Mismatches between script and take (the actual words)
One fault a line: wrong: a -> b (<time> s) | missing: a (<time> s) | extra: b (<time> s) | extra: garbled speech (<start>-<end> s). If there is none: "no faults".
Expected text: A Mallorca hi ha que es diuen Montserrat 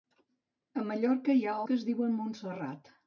no faults